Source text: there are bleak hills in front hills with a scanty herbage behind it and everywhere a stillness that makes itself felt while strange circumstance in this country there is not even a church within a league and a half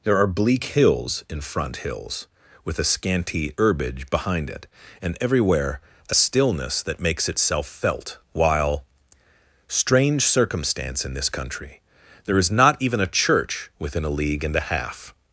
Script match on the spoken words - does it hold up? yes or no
yes